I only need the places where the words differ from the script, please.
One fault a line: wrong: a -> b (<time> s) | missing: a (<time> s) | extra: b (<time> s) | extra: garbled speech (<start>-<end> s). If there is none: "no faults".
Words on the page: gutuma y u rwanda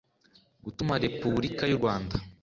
extra: repubulika (1.1 s)